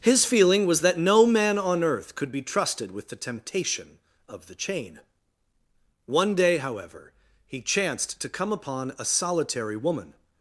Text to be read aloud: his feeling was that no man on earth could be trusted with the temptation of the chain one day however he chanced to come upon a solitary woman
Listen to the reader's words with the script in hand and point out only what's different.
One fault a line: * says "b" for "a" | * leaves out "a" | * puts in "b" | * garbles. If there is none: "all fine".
all fine